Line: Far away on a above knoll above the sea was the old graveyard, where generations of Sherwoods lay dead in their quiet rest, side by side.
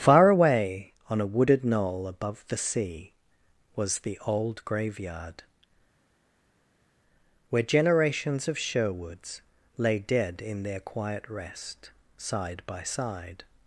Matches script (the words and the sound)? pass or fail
fail